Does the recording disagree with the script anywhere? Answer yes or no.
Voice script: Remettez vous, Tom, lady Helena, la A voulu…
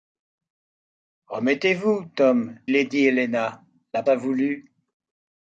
no